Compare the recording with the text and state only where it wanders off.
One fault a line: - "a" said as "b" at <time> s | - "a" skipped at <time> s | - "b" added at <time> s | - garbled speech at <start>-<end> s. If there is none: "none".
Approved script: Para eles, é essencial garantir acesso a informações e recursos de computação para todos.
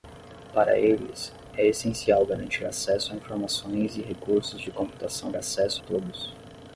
- "para" said as "acesso" at 5.3 s